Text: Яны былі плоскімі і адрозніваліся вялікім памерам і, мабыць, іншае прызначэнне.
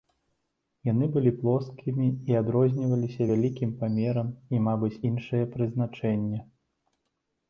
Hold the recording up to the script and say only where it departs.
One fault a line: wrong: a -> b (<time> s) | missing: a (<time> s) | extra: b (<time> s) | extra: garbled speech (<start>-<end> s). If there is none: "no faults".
no faults